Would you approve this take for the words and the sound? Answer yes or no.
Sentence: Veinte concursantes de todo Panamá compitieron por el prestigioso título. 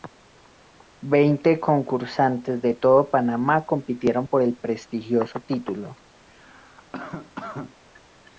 no